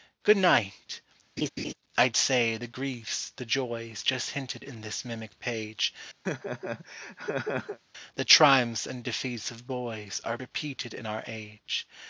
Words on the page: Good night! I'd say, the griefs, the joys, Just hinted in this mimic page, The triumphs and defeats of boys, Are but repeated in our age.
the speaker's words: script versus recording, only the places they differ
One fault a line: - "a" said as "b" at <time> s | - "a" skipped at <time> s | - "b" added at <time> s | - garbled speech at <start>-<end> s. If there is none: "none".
- "but" skipped at 10.4 s